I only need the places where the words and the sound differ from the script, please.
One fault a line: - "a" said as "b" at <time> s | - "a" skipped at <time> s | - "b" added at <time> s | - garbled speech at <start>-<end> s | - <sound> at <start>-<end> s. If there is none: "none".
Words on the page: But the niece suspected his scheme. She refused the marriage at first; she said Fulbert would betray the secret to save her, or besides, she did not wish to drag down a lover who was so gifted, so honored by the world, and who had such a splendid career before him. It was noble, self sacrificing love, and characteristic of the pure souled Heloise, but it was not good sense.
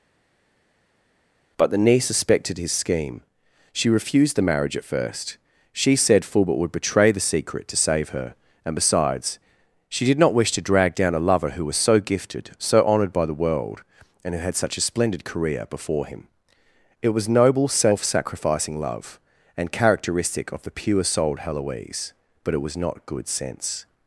- "or" said as "and" at 8.6 s